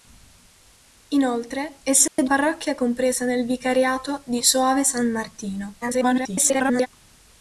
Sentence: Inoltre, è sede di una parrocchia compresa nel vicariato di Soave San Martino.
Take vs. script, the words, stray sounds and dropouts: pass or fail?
fail